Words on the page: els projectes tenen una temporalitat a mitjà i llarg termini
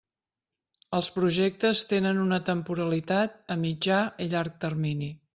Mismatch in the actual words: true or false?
false